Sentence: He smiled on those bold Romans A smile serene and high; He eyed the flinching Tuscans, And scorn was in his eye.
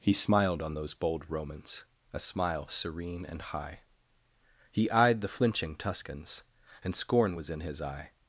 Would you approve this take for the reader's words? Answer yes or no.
yes